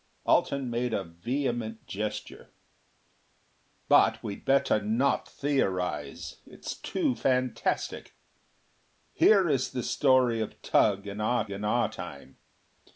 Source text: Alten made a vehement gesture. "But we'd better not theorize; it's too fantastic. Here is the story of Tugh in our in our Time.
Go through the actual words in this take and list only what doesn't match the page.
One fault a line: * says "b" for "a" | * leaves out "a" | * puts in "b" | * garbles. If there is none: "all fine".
all fine